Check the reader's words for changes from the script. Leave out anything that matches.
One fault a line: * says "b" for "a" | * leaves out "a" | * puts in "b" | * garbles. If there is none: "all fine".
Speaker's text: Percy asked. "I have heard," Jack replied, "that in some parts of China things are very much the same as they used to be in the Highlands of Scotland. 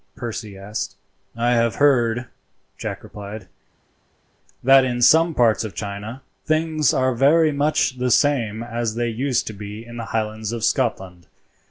all fine